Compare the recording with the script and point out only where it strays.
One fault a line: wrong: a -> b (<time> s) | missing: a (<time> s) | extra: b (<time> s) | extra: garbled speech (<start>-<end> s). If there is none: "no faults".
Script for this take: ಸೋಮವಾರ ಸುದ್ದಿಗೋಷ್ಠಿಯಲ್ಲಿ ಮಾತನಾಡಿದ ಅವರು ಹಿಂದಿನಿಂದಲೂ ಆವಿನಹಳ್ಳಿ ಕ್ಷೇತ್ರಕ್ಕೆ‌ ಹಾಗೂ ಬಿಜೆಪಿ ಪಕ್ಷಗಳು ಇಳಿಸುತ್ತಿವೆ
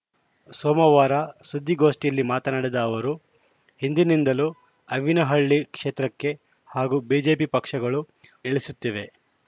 no faults